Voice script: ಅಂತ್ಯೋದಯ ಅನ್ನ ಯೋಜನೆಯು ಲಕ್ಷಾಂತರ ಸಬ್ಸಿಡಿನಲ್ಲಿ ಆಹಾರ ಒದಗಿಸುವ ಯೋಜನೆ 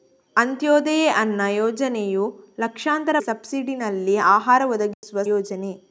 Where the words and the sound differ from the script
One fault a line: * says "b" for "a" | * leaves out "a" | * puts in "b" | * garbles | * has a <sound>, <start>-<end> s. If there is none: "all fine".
* has a dropout, 4.9-5.0 s